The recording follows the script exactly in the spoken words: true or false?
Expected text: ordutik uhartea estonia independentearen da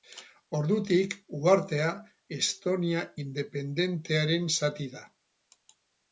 false